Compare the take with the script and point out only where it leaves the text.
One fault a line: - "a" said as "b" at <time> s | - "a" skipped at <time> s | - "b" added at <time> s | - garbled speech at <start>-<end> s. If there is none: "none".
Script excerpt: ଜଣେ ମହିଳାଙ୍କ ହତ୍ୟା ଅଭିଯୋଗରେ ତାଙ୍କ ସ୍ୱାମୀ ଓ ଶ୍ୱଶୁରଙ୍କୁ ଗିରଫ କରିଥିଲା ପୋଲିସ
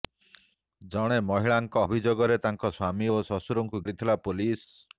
- "ହତ୍ୟା" skipped at 1.8 s
- "ଗିରଫ" skipped at 3.8 s